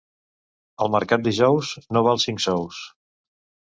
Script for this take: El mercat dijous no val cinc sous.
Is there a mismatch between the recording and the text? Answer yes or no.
no